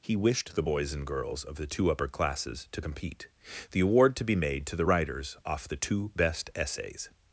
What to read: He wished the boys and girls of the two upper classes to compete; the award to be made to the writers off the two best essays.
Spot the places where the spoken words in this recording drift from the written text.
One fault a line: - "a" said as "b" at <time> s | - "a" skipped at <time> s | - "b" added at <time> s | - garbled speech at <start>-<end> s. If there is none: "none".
none